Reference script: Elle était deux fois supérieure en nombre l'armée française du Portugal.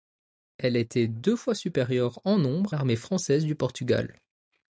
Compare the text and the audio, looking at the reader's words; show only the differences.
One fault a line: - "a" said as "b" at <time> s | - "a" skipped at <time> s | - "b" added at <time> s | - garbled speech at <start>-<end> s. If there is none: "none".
none